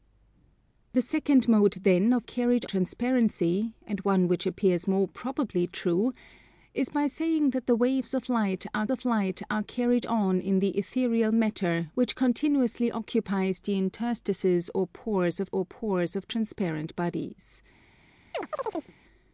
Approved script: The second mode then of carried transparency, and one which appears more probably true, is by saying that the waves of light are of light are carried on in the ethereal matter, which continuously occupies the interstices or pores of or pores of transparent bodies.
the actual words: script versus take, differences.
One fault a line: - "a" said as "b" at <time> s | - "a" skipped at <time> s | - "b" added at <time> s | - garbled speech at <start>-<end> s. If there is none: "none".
none